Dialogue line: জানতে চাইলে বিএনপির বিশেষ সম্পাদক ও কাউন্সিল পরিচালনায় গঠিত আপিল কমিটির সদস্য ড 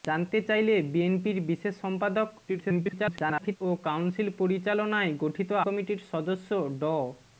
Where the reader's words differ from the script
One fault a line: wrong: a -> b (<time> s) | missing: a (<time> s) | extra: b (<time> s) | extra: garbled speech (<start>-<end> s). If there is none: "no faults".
extra: garbled speech (2.5-3.6 s)
missing: আপিল (5.5 s)